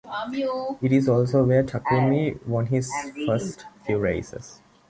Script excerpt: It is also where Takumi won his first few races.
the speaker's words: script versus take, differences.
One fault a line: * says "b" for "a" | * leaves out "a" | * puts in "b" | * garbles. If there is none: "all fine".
all fine